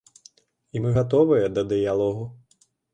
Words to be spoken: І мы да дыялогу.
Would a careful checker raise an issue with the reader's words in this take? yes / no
yes